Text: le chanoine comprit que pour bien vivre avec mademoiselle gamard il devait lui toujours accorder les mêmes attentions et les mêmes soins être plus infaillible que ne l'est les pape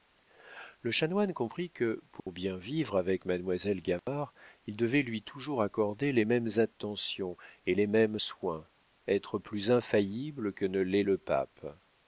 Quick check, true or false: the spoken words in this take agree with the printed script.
false